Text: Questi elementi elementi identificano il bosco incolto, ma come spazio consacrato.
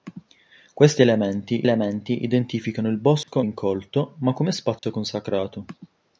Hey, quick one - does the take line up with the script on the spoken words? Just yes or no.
yes